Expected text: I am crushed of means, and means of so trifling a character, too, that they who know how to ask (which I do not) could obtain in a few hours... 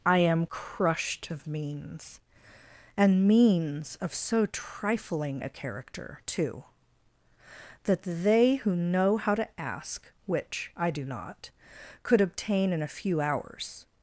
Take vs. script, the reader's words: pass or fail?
pass